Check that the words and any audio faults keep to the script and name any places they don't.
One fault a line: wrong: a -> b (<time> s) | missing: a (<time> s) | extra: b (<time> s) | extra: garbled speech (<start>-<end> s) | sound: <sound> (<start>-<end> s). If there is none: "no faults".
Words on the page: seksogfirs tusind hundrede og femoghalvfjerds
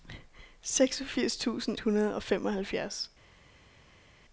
no faults